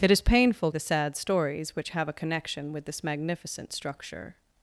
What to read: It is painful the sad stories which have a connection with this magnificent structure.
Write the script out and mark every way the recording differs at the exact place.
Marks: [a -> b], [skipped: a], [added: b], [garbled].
It is painful the sad stories which have a connection with this magnificent structure.